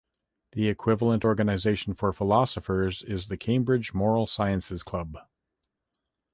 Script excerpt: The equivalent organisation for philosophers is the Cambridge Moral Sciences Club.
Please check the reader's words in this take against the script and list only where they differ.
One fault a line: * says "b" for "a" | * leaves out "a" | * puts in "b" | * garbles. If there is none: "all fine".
all fine